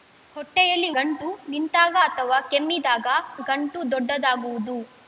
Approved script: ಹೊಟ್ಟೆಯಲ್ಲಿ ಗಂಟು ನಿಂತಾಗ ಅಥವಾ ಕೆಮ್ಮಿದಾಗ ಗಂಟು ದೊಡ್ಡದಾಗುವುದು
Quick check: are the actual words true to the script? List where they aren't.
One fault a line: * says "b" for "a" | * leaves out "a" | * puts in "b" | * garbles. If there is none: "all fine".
all fine